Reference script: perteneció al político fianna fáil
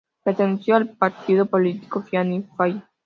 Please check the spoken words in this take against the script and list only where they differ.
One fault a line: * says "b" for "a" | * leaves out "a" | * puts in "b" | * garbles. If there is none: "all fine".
* puts in "partido"